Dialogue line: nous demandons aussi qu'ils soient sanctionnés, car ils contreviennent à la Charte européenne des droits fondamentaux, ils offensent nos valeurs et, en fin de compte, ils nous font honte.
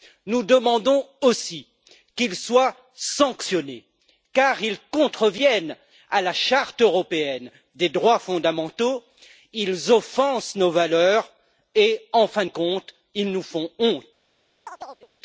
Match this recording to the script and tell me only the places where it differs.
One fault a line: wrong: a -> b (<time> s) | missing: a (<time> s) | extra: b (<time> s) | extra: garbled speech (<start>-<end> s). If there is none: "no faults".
no faults